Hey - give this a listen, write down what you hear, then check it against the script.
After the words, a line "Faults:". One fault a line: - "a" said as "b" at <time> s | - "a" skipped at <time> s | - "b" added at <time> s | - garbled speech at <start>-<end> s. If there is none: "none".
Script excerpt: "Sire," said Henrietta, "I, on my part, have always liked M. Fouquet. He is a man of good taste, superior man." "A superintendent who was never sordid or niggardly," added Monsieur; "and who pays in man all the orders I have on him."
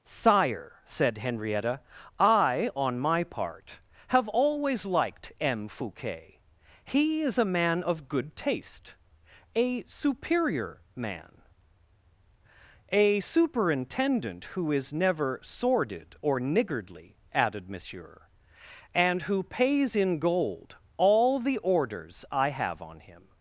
"Sire," said Henrietta, "I, on my part, have always liked M. Fouquet. He is a man of good taste, a superior man." "A superintendent who is never sordid or niggardly," added Monsieur; "and who pays in gold all the orders I have on him."
Faults:
- "a" added at 9.5 s
- "was" said as "is" at 14.7 s
- "man" said as "gold" at 20.2 s